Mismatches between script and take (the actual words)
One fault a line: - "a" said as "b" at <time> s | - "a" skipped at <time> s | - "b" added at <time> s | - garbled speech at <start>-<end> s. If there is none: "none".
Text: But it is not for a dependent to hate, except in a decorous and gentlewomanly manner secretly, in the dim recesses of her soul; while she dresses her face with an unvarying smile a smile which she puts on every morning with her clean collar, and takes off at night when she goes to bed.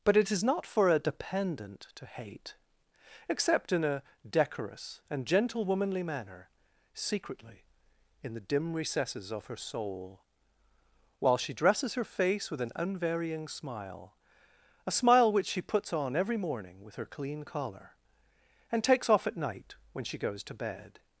none